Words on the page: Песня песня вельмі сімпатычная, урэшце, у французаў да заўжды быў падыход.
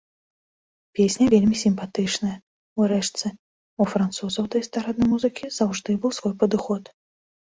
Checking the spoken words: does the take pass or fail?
fail